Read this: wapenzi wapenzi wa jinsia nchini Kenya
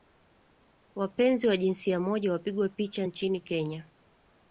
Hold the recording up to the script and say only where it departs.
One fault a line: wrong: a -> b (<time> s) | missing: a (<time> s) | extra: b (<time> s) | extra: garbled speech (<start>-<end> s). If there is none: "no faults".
missing: wapenzi (1.5 s)
extra: moja wapigwa picha (2.0 s)